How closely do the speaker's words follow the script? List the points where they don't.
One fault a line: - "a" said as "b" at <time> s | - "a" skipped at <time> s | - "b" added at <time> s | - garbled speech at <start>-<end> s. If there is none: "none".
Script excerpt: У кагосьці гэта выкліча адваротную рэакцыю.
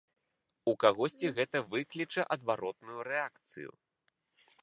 none